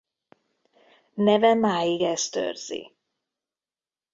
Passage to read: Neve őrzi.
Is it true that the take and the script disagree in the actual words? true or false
true